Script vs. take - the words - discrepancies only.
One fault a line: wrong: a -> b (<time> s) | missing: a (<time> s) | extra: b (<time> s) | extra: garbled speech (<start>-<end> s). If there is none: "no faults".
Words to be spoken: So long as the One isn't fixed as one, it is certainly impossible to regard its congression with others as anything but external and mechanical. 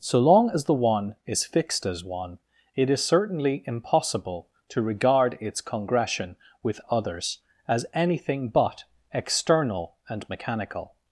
wrong: isn't -> is (1.3 s)